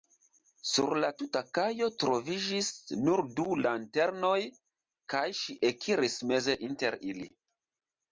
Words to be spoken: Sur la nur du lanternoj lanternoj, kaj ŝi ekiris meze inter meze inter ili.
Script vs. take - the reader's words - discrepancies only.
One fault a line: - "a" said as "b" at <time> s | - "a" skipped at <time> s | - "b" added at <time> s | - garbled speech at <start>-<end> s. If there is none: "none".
- "tuta kajo troviĝis" added at 1.2 s
- "lanternoj" skipped at 4.4 s
- "meze inter" skipped at 7.0 s